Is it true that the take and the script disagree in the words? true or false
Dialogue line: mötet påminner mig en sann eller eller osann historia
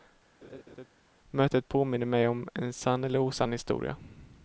true